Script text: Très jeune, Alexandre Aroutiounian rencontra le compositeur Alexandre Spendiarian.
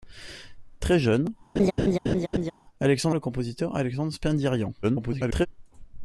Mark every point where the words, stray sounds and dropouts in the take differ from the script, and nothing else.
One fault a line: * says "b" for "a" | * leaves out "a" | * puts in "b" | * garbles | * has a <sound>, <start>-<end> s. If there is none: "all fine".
* has a laugh, 1.6-2.5 s
* leaves out "Aroutiounian rencontra"
* garbles